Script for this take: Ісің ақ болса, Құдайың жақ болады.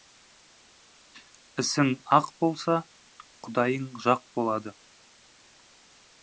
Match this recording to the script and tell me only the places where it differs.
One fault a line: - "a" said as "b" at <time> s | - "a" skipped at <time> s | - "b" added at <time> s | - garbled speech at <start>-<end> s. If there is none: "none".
none